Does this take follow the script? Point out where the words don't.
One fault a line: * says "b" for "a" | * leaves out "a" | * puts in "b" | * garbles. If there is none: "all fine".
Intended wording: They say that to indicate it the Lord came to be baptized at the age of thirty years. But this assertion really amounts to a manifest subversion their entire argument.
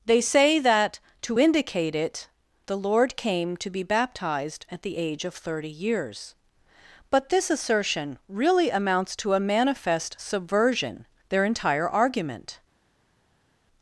all fine